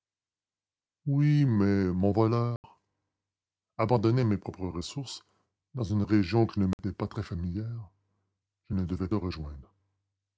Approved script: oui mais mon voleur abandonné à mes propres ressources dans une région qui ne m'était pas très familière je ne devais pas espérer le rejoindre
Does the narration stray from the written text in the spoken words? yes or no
yes